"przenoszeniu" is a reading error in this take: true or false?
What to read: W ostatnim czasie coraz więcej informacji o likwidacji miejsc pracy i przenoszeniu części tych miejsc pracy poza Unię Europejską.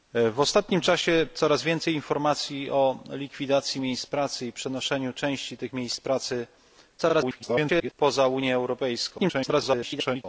false